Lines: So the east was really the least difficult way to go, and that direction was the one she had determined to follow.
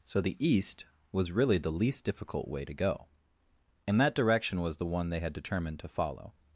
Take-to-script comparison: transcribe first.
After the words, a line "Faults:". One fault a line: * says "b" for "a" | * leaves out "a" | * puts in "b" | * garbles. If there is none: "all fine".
So the east was really the least difficult way to go, and that direction was the one they had determined to follow.
Faults:
* says "they" for "she"